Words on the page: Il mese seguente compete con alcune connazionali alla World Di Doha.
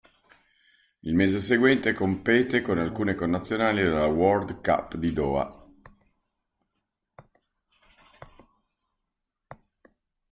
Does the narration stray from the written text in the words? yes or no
yes